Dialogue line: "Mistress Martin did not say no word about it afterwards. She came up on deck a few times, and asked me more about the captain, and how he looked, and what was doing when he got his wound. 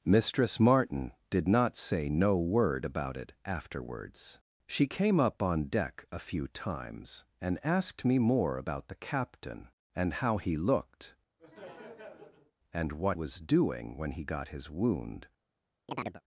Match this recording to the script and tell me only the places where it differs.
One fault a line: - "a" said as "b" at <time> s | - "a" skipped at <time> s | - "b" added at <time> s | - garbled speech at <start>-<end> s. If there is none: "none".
none